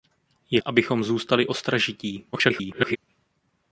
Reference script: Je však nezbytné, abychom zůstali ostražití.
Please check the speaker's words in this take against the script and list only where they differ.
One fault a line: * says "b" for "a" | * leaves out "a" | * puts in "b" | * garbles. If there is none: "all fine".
* leaves out "však nezbytné"
* garbles